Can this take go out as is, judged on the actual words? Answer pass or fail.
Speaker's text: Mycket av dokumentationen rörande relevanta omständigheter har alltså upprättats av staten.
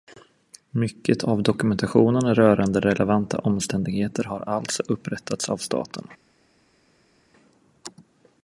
pass